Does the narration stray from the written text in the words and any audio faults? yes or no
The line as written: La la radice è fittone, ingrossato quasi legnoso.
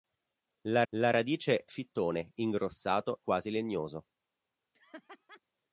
yes